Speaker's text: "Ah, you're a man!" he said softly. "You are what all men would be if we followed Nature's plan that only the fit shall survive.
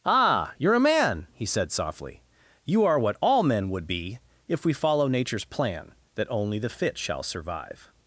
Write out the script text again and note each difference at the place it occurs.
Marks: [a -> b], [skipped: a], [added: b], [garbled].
"Ah, you're a man!" he said softly. "You are what all men would be if we [followed -> follow] Nature's plan that only the fit shall survive.